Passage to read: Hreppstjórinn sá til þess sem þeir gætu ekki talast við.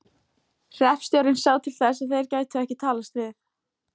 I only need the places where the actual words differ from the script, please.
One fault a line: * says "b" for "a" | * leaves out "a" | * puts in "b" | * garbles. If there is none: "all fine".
* says "að" for "sem"